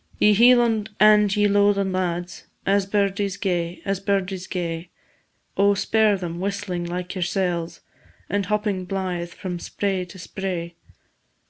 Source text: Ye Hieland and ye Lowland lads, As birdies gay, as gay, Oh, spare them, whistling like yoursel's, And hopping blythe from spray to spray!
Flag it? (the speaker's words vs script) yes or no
yes